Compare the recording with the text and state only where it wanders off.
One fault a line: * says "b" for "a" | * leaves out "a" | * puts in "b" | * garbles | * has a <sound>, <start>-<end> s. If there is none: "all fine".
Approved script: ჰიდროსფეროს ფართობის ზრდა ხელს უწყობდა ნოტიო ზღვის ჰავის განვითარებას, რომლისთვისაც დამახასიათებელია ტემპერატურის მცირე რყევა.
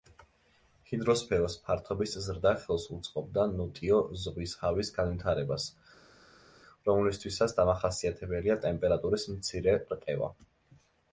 all fine